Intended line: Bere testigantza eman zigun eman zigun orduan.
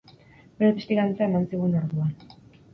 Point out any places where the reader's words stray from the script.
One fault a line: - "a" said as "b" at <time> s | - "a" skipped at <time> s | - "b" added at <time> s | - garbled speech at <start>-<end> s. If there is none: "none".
- "eman zigun" skipped at 1.8 s